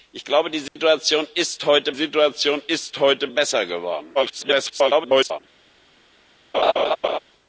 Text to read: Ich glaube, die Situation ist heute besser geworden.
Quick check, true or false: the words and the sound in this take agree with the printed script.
false